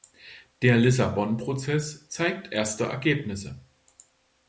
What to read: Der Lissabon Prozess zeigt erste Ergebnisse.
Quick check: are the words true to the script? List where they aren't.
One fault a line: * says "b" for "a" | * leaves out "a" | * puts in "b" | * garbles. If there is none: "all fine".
all fine